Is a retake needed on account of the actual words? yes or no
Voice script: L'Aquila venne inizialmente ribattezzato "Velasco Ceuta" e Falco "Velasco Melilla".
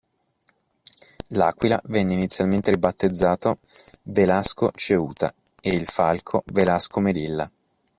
yes